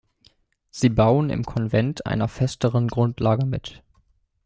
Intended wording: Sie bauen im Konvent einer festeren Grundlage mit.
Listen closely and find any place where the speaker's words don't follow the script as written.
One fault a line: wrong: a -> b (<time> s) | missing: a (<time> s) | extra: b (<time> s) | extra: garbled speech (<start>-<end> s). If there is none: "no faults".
no faults